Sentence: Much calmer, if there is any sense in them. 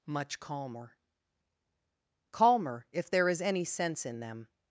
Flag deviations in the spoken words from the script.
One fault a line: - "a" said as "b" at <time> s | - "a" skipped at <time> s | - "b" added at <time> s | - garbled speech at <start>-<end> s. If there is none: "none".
- "calmer" added at 2.3 s